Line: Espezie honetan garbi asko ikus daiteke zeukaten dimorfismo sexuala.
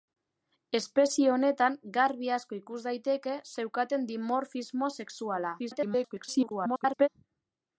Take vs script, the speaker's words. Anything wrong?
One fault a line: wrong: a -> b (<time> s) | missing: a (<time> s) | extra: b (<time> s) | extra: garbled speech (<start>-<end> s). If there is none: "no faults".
extra: garbled speech (5.6-7.1 s)